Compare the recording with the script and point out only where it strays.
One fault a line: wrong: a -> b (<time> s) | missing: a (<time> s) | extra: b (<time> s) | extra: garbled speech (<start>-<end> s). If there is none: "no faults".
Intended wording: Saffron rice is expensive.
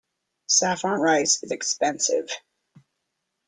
no faults